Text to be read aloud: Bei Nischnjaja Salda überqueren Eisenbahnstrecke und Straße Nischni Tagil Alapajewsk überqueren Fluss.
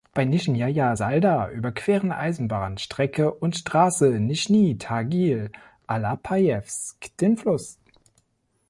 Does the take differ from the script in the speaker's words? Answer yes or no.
yes